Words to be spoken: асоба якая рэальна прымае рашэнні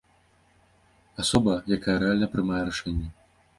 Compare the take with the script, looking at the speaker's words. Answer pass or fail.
pass